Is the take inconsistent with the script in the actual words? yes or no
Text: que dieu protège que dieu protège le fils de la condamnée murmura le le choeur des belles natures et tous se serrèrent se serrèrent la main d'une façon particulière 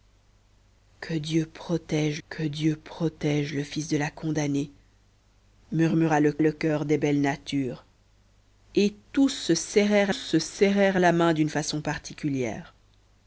no